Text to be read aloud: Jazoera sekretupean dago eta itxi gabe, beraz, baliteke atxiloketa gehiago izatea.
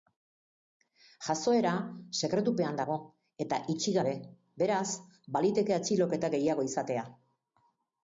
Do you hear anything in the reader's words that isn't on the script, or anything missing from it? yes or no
no